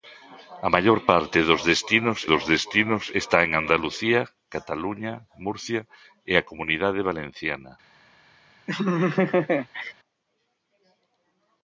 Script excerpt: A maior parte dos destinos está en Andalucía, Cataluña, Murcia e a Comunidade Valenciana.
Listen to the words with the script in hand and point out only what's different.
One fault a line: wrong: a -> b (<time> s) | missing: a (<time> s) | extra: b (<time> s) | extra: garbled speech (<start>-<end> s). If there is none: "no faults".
extra: dos destinos (2.3 s)